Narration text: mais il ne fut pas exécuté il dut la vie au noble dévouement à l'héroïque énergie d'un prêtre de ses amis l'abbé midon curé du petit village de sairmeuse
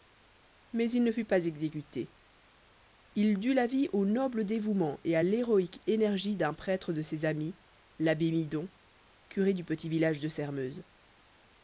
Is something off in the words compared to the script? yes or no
yes